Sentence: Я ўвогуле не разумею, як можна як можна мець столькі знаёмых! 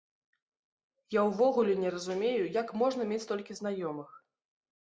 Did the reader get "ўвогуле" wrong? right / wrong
right